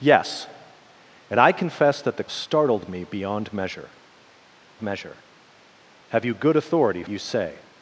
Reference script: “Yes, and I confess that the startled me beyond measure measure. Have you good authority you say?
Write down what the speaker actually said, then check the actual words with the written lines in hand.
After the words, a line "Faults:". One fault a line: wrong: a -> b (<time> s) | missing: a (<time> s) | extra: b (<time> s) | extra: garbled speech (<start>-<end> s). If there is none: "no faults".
“Yes, and I confess that the startled me beyond measure measure. Have you good authority you say?
Faults:
no faults